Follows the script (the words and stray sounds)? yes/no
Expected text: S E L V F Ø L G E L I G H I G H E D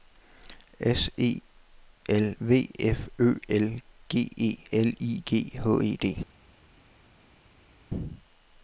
no